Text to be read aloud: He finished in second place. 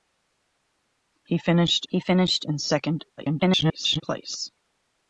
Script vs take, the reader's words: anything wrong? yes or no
yes